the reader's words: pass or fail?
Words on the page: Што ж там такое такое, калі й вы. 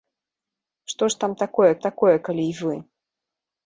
pass